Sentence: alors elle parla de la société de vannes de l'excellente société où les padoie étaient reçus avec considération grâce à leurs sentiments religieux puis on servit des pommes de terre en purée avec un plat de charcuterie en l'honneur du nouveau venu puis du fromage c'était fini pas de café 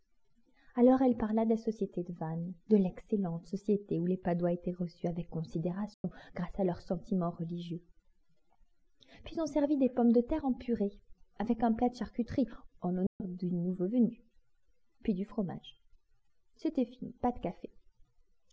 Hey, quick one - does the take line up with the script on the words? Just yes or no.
yes